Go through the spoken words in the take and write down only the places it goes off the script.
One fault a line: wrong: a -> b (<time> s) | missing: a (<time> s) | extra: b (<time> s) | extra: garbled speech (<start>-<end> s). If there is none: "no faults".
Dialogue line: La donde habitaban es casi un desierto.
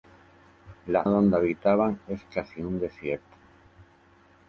no faults